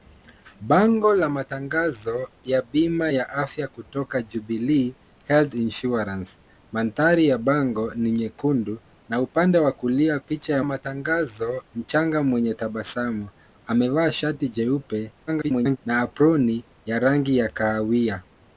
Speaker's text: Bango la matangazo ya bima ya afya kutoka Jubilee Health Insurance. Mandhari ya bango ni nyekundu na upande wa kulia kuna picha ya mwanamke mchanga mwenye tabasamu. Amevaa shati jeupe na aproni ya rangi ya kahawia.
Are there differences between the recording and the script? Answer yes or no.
yes